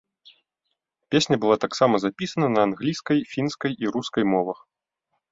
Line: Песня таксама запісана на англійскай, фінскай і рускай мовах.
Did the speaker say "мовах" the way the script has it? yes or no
yes